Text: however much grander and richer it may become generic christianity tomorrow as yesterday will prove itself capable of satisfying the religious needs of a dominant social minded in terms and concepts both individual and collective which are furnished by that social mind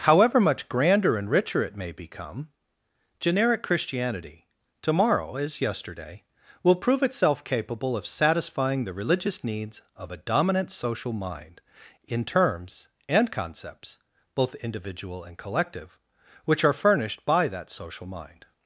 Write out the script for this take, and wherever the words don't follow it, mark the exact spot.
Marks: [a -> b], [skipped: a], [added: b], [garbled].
however much grander and richer it may become generic christianity tomorrow as yesterday will prove itself capable of satisfying the religious needs of a dominant social [minded -> mind] in terms and concepts both individual and collective which are furnished by that social mind